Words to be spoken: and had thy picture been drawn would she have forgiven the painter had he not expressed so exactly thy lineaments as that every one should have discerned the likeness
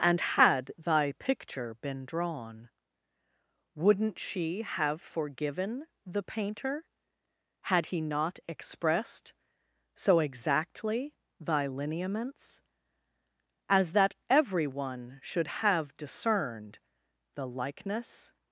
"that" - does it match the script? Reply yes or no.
yes